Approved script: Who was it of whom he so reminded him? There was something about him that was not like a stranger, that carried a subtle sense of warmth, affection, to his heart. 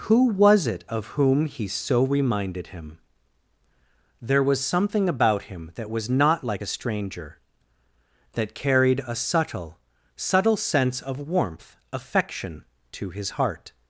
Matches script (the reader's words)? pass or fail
fail